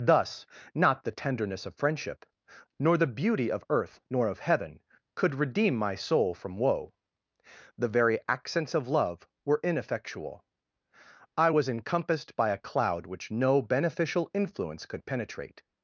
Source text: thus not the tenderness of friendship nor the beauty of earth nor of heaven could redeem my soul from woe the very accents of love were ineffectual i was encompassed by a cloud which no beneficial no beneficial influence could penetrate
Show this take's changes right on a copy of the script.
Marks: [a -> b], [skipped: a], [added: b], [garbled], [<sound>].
thus not the tenderness of friendship nor the beauty of earth nor of heaven could redeem my soul from woe the very accents of love were ineffectual i was encompassed by a cloud which no beneficial [skipped: no beneficial] influence could penetrate